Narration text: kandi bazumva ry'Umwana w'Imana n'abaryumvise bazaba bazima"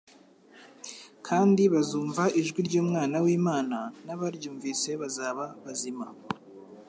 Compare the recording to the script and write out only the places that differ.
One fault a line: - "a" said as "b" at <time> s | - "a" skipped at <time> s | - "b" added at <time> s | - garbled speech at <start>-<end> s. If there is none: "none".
- "ijwi" added at 2.4 s